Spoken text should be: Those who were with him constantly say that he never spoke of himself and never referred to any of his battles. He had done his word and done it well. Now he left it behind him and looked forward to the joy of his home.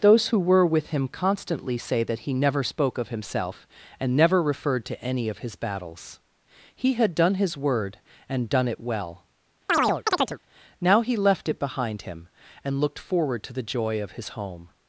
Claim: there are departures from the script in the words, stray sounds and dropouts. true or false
true